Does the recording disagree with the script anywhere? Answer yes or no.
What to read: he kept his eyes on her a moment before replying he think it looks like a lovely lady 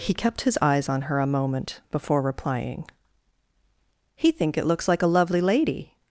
no